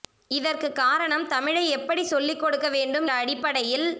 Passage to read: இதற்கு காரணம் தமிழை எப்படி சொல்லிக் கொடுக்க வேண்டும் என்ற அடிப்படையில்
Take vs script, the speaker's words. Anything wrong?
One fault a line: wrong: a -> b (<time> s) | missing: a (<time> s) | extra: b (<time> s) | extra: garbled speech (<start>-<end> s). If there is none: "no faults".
missing: என்ற (3.1 s)